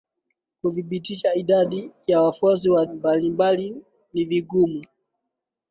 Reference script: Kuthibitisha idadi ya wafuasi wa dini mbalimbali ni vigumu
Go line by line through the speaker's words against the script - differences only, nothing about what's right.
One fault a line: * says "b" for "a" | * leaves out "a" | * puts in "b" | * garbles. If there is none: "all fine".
* leaves out "dini"